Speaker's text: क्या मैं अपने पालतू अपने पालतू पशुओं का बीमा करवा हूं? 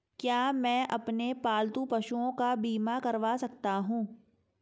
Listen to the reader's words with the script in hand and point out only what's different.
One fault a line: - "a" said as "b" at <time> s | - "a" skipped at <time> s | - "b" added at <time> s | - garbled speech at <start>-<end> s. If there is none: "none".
- "अपने पालतू" skipped at 1.9 s
- "सकता" added at 3.3 s